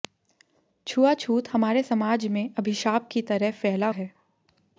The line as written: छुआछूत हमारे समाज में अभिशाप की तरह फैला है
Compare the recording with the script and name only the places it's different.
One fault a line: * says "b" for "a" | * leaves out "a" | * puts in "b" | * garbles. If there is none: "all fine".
all fine